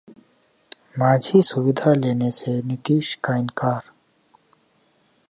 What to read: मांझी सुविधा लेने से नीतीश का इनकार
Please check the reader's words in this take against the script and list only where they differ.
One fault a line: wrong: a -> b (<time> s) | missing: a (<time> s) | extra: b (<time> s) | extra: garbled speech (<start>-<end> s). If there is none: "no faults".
no faults